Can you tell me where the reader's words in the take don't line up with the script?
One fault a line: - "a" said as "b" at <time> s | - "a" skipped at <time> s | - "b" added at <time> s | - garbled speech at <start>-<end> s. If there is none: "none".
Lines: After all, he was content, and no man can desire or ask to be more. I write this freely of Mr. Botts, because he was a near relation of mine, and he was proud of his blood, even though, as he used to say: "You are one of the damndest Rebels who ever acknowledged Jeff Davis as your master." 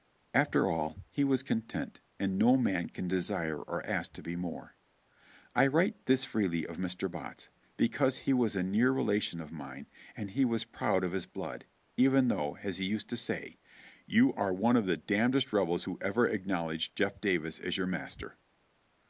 none